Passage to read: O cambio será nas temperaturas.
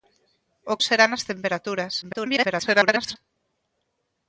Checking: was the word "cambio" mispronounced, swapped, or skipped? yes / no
yes